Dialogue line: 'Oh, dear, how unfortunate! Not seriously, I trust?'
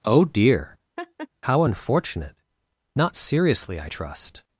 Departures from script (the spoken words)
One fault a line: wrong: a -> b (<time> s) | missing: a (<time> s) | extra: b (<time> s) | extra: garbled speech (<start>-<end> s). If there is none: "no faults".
no faults